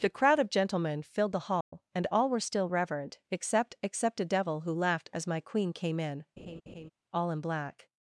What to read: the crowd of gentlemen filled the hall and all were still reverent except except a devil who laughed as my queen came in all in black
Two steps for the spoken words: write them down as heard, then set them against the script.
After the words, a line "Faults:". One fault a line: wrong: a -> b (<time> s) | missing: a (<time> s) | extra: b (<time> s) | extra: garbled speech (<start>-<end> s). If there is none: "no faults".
the crowd of gentlemen filled the hall and all were still reverent except except a devil who laughed as my queen came in all in black
Faults:
no faults